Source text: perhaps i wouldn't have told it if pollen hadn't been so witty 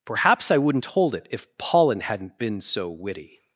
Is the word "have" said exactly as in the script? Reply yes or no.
no